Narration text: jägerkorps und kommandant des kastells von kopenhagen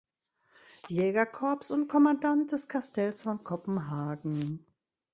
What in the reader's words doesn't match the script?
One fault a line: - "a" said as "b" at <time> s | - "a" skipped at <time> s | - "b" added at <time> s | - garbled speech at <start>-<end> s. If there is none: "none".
none